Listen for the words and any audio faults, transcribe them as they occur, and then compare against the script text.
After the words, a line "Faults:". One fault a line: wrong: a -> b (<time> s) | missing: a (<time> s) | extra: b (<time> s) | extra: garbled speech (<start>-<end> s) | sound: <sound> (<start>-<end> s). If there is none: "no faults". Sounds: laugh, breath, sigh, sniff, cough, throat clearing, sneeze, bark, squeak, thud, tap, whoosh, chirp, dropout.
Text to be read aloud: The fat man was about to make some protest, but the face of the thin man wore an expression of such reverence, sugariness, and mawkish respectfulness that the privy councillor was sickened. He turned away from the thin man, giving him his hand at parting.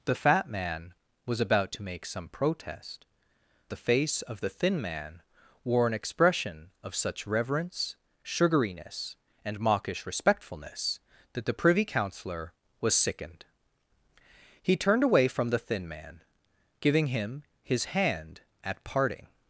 The fat man was about to make some protest, the face of the thin man wore an expression of such reverence, sugariness, and mawkish respectfulness that the privy councillor was sickened. He turned away from the thin man, giving him his hand at parting.
Faults:
missing: but (3.0 s)